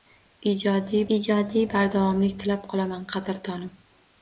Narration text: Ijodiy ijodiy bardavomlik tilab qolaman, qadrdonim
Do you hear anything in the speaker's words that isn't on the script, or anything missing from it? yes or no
no